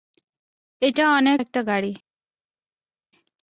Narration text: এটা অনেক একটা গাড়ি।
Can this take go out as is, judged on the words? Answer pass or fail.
pass